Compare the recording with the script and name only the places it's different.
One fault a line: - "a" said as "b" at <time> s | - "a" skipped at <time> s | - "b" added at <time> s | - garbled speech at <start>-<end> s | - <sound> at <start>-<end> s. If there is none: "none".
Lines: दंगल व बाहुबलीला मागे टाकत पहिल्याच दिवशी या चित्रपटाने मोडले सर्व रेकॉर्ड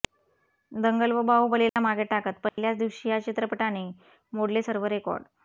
- dropout at 1.7-1.8 s
- dropout at 2.5-2.6 s